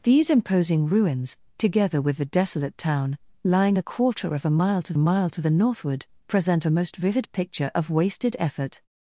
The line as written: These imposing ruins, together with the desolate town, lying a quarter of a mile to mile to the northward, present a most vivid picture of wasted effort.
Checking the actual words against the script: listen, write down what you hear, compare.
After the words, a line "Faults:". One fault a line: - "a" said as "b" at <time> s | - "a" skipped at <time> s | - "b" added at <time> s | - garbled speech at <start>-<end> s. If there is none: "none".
These imposing ruins, together with the desolate town, lying a quarter of a mile to mile to the northward, present a most vivid picture of wasted effort.
Faults:
none